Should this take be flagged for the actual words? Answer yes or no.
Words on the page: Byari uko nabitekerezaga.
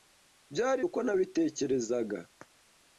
no